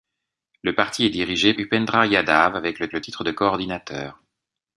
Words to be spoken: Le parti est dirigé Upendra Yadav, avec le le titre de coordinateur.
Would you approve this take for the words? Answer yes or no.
yes